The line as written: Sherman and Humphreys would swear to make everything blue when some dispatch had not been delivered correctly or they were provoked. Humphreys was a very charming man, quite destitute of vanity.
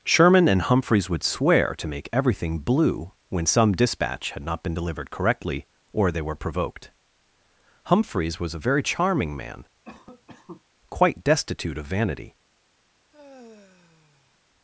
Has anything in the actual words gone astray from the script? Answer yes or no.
no